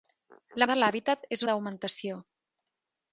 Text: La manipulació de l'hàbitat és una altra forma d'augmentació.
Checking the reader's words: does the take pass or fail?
fail